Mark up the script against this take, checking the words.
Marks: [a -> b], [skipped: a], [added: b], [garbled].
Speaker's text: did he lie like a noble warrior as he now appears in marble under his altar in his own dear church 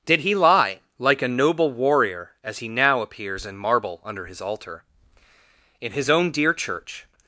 did he lie like a noble warrior as he now appears in marble under his altar in his own dear church